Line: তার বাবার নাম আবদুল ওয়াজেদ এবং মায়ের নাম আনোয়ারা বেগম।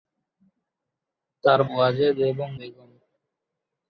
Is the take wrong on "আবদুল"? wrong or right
wrong